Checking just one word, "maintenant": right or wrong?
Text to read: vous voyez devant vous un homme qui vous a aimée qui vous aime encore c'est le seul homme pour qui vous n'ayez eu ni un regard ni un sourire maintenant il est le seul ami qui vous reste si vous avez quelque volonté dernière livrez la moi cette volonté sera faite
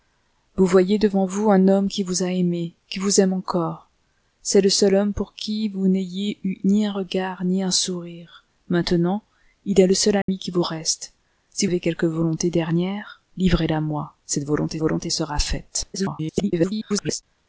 right